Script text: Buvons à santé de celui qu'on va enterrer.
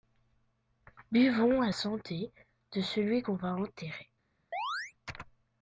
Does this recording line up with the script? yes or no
yes